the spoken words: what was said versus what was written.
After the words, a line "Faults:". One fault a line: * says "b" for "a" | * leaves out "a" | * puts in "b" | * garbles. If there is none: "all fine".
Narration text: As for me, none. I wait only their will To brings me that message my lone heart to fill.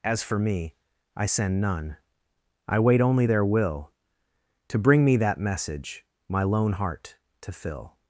As for me, I send none. I wait only their will To bring me that message my lone heart to fill.
Faults:
* puts in "I send"
* says "bring" for "brings"